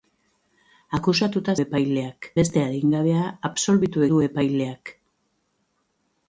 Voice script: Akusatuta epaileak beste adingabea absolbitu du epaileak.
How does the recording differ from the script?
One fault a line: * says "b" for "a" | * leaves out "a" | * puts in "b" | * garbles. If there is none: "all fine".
all fine